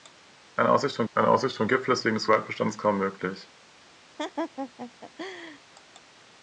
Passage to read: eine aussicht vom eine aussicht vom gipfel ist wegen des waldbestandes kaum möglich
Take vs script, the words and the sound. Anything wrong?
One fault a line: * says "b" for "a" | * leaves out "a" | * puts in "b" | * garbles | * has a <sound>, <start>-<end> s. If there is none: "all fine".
* has a laugh, 4.2-5.6 s